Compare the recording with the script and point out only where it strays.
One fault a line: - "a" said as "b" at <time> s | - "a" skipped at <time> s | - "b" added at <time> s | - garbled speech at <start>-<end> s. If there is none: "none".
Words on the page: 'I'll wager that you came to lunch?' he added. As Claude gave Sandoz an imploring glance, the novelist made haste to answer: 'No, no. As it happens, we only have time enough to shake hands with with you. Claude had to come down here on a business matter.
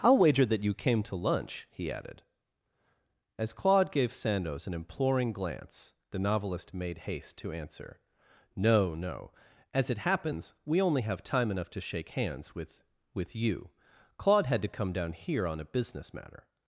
none